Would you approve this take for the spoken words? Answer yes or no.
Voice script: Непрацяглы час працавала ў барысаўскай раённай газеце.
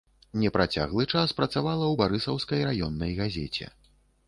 yes